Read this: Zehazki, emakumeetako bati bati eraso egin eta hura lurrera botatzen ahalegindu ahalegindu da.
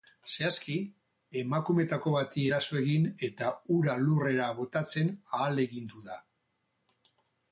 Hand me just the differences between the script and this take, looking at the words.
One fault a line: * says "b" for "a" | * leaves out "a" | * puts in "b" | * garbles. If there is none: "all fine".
* leaves out "bati"
* leaves out "ahalegindu"